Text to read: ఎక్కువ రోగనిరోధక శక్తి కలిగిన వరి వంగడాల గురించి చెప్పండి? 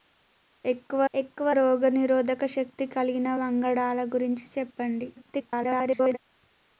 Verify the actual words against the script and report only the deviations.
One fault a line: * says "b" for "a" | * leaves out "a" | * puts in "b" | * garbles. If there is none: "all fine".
* puts in "ఎక్కువ"
* leaves out "వరి"
* garbles